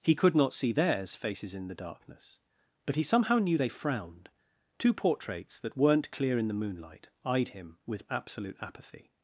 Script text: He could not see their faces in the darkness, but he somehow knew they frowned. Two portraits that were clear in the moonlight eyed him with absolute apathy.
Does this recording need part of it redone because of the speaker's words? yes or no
yes